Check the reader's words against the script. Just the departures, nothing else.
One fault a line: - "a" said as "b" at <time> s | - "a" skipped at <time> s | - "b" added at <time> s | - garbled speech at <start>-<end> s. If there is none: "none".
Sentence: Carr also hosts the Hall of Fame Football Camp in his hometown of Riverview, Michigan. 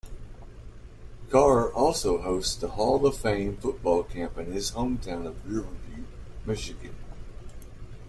none